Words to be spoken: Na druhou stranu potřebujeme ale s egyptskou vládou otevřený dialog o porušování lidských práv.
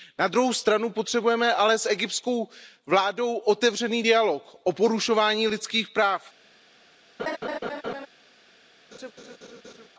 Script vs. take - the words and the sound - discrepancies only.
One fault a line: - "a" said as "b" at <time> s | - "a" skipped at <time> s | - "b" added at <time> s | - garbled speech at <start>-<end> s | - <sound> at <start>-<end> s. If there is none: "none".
- laugh at 7.2-8.1 s
- laugh at 8.9-9.9 s